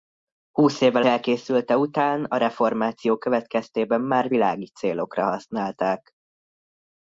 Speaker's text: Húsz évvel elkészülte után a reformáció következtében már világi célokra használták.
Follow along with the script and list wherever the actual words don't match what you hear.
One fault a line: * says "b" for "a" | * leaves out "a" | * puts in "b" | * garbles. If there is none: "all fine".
all fine